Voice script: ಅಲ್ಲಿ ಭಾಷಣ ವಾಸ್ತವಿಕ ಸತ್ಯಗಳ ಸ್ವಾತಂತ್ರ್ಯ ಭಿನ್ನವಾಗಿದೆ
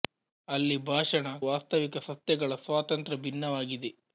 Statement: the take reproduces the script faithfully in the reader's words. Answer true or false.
true